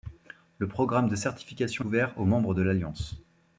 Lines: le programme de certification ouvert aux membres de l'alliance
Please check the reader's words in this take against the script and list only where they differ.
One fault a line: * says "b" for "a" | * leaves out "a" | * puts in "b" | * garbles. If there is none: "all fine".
all fine